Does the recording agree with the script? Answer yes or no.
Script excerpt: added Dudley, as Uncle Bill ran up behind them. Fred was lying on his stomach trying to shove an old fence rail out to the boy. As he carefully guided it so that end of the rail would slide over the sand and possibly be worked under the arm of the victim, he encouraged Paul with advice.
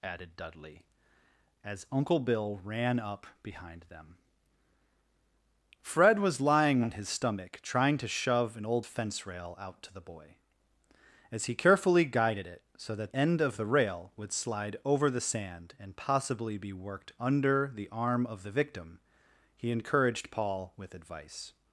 yes